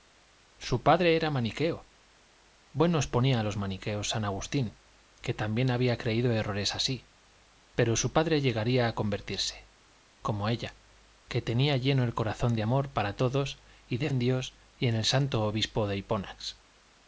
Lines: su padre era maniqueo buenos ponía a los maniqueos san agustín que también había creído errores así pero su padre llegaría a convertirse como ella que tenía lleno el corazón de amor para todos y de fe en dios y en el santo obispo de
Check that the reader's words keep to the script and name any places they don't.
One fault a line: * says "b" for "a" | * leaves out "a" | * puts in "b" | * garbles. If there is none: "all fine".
* leaves out "fe"